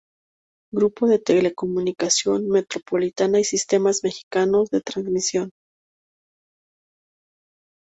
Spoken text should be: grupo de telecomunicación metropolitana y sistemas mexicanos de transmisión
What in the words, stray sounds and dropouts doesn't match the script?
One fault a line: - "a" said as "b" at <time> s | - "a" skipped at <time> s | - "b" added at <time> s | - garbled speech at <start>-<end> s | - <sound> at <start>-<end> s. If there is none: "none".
none